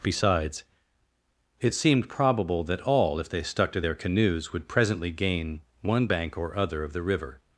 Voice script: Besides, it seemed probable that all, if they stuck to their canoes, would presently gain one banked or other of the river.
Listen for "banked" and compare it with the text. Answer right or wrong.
wrong